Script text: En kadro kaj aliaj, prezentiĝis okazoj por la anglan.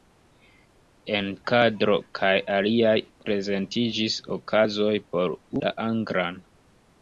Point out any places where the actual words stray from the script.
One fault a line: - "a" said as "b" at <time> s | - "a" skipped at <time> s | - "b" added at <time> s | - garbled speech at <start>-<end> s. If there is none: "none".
none